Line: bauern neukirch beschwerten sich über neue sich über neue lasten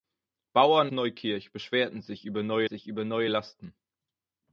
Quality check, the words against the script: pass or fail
pass